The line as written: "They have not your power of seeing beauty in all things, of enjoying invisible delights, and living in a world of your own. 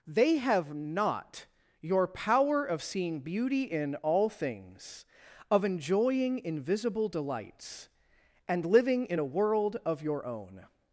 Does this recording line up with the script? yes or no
yes